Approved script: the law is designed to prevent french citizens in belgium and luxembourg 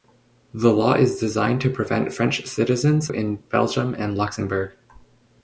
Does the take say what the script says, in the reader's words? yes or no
yes